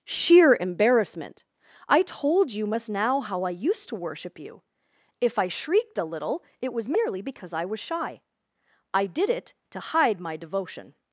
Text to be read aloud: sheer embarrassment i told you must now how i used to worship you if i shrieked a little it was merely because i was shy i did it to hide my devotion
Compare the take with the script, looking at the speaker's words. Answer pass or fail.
pass